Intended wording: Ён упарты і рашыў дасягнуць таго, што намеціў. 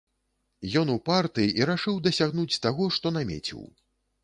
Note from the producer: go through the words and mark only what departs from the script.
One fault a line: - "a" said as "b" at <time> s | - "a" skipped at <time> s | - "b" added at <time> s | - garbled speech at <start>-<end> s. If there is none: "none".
none